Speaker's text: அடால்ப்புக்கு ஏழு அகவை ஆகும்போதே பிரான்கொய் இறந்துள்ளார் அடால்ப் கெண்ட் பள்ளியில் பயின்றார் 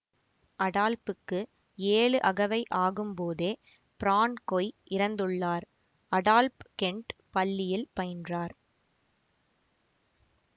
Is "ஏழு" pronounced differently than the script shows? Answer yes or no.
no